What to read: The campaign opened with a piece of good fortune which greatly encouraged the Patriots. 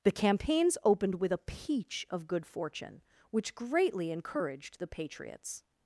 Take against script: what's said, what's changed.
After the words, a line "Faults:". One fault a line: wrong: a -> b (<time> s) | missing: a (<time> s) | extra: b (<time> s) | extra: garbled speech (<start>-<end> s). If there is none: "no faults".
The campaigns opened with a peach of good fortune which greatly encouraged the Patriots.
Faults:
wrong: campaign -> campaigns (0.1 s)
wrong: piece -> peach (1.4 s)